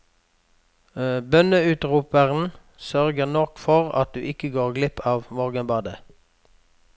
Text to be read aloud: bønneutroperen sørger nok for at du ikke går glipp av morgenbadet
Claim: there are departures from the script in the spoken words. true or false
false